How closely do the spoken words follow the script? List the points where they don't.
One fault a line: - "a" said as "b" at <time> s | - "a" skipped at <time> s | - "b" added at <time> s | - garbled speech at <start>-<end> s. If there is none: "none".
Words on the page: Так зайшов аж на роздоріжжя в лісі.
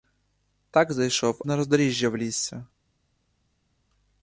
- "аж" skipped at 1.4 s